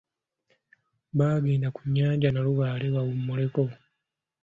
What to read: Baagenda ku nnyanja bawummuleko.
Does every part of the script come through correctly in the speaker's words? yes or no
no